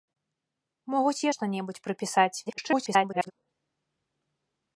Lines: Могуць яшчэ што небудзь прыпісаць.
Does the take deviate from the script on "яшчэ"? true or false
true